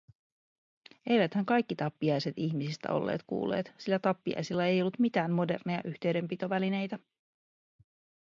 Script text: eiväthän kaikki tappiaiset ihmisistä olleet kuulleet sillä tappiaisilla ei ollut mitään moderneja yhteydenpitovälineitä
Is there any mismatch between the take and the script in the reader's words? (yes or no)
no